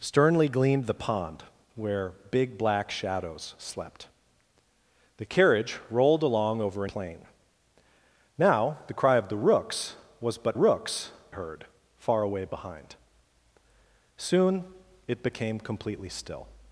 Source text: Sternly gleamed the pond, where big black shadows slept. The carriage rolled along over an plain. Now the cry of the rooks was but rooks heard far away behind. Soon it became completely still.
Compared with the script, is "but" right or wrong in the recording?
right